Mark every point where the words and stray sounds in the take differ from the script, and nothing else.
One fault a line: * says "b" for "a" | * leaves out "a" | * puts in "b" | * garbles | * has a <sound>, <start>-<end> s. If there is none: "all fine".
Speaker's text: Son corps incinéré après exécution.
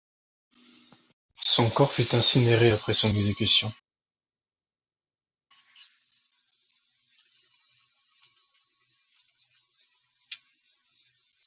* puts in "fut"
* puts in "son"